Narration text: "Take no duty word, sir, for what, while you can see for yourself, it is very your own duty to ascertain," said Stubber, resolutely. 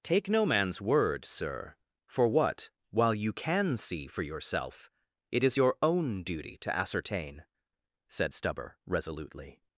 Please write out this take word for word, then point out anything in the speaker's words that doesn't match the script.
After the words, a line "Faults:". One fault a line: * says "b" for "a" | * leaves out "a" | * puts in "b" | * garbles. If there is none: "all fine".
"Take no man's word, sir, for what, while you can see for yourself, it is your own duty to ascertain," said Stubber, resolutely.
Faults:
* says "man's" for "duty"
* leaves out "very"